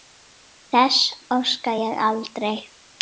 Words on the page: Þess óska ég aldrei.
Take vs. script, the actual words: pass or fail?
pass